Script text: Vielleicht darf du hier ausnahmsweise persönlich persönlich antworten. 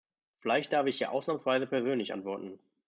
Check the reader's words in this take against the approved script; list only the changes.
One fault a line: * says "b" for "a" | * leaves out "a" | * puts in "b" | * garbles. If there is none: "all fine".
* says "ich" for "du"
* leaves out "persönlich"